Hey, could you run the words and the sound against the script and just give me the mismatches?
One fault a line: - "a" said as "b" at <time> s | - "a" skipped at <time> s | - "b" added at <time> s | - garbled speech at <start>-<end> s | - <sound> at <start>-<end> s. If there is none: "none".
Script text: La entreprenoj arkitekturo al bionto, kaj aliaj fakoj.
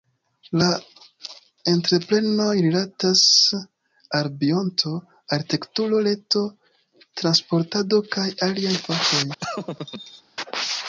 - "arkitekturo" said as "rilatas" at 2.7 s
- "arkitekturo reto transportado" added at 5.4 s
- laugh at 9.4-10.2 s